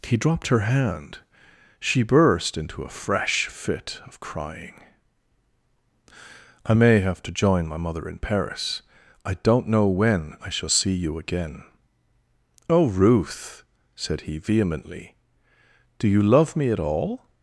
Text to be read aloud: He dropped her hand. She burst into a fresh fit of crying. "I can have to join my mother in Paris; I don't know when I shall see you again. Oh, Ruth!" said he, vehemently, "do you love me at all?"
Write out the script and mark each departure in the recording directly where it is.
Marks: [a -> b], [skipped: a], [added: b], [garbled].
He dropped her hand. She burst into a fresh fit of crying. "I [can -> may] have to join my mother in Paris; I don't know when I shall see you again. Oh, Ruth!" said he, vehemently, "do you love me at all?"